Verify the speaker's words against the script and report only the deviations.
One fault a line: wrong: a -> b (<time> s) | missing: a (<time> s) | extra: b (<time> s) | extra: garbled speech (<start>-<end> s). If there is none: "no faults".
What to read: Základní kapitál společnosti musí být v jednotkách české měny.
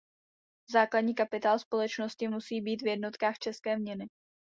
no faults